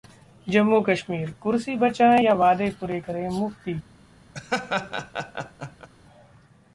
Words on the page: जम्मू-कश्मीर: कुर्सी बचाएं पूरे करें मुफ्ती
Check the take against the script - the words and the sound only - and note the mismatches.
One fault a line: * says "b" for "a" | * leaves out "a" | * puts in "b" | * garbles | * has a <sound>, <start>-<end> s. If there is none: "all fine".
* puts in "या वादे"
* has a laugh, 4.3-5.9 s